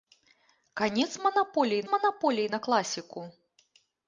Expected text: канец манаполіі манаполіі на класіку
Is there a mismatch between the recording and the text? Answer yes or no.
no